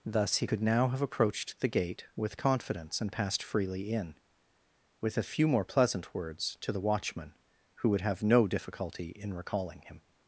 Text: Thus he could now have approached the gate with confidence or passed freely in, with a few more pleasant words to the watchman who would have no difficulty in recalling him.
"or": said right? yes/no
no